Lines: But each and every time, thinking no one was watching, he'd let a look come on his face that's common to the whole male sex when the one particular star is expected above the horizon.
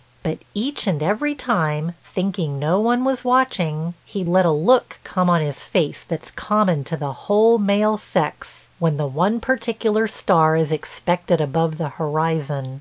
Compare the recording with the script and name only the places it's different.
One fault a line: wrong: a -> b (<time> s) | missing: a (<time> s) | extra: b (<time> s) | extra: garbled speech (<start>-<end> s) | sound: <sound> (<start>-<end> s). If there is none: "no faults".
no faults